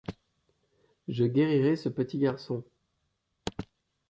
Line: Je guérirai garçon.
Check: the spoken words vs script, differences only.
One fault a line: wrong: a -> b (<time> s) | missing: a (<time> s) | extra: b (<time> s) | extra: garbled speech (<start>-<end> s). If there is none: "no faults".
extra: ce petit (1.8 s)